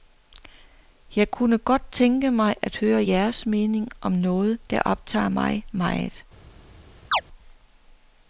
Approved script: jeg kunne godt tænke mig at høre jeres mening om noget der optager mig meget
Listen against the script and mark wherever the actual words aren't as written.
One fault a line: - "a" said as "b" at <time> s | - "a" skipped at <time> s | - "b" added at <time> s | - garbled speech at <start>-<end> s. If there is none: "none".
none